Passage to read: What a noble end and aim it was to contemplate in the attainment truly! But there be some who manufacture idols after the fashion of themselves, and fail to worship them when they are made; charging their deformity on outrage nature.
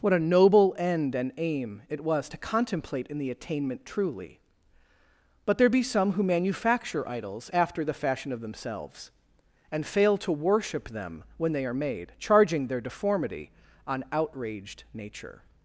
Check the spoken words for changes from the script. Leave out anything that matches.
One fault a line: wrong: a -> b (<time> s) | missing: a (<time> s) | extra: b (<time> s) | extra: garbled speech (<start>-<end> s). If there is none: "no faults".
wrong: outrage -> outraged (14.1 s)